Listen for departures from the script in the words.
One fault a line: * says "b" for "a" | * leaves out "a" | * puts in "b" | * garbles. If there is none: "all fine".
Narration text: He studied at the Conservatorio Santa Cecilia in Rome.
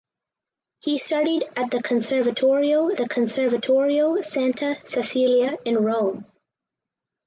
* puts in "the Conservatorio"